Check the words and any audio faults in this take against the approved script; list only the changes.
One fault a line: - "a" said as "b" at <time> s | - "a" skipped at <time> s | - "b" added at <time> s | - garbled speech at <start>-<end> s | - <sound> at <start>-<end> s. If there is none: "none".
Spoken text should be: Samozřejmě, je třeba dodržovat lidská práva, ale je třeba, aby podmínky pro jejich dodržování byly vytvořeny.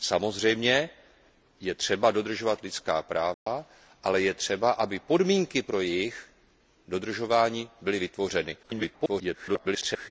- dropout at 3.3-3.5 s
- garbled speech at 8.6-10.1 s